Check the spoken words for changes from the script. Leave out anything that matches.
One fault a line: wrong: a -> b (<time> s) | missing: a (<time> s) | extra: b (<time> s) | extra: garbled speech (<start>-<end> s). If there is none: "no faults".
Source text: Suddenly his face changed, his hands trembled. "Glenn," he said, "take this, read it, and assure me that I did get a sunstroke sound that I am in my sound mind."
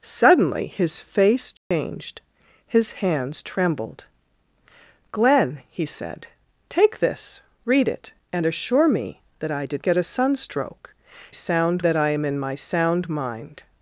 no faults